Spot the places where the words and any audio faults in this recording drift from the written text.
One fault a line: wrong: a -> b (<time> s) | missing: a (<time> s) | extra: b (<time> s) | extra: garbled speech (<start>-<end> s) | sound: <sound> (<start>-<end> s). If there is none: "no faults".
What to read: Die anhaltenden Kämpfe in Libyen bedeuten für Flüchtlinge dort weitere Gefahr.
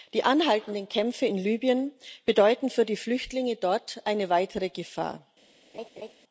extra: die (2.9 s)
extra: eine (4.1 s)
sound: laugh (5.7-6.1 s)